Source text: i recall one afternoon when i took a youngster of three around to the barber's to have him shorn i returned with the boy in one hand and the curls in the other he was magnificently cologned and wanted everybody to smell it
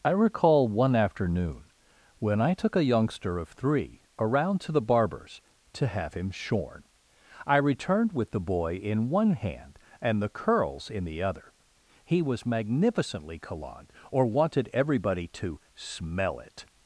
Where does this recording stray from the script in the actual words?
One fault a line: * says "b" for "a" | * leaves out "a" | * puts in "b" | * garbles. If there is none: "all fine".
* says "or" for "and"